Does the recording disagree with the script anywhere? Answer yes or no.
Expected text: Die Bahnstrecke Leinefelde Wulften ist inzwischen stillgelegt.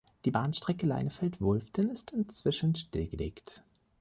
no